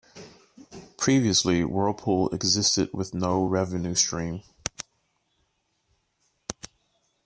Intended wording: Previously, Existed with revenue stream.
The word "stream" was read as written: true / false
true